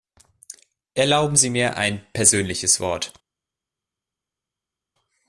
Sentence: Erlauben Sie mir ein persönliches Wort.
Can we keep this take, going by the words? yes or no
yes